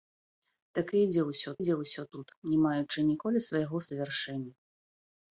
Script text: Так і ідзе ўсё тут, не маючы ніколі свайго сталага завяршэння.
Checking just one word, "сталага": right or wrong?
wrong